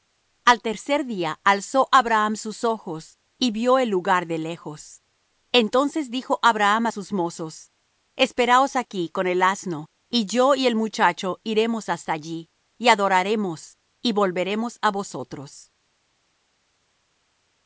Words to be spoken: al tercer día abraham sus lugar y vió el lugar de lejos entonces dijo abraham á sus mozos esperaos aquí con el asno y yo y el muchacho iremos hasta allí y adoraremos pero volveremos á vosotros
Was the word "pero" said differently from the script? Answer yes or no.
yes